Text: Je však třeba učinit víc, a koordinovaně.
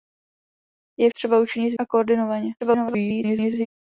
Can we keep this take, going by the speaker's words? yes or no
no